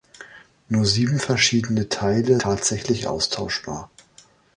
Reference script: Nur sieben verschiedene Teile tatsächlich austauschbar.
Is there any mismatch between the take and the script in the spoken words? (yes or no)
no